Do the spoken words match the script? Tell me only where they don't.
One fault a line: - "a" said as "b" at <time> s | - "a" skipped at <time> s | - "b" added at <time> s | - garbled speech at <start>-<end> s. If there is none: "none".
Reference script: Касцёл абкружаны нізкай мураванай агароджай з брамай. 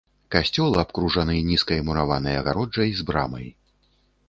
none